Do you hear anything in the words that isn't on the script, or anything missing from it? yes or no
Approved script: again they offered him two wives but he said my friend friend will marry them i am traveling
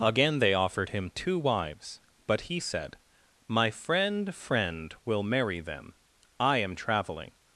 no